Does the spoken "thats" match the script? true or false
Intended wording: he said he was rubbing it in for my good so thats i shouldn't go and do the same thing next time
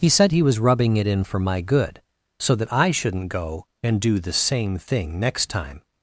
false